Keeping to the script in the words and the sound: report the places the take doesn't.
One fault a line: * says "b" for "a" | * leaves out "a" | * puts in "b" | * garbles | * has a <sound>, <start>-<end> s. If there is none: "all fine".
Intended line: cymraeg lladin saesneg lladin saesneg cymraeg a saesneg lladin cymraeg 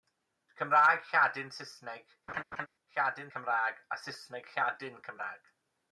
* has a laugh, 2.3-2.7 s
* leaves out "saesneg"